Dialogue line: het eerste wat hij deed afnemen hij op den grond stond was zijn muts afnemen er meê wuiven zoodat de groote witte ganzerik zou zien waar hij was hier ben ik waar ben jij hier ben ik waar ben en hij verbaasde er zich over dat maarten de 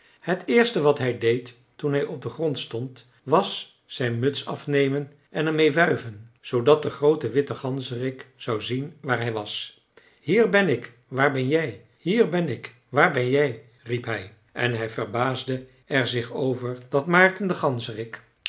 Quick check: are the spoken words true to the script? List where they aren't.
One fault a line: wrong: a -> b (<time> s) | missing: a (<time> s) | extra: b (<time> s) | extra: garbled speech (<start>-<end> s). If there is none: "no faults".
wrong: afnemen -> toen (1.8 s)
extra: en (5.3 s)
extra: jij riep hij (13.3 s)